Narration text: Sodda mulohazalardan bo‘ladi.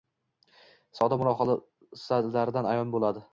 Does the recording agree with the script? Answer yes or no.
no